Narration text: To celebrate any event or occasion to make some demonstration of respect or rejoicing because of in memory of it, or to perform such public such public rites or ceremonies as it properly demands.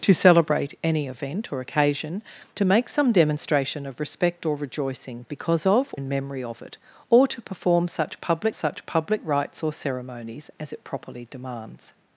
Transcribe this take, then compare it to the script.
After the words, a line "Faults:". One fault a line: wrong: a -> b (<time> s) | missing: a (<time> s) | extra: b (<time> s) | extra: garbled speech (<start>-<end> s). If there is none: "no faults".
To celebrate any event or occasion to make some demonstration of respect or rejoicing because of in memory of it, or to perform such public such public rites or ceremonies as it properly demands.
Faults:
no faults